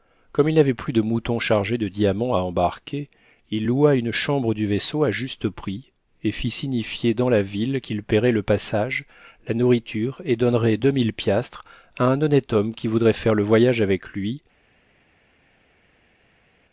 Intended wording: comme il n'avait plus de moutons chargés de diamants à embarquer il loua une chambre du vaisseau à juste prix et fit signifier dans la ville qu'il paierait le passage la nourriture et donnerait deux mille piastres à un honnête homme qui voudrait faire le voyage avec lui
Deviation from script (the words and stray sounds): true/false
false